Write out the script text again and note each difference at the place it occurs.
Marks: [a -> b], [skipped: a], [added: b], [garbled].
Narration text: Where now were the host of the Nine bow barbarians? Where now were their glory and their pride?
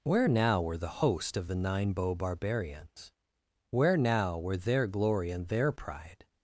Where now were the host of the Nine bow barbarians? Where now were their glory and their pride?